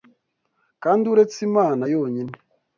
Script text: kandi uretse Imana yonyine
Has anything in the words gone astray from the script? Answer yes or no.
no